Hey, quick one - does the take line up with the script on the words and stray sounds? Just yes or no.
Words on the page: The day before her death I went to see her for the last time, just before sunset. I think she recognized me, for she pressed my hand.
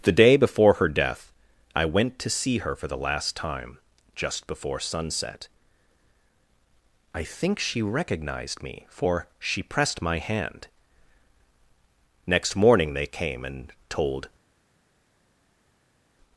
no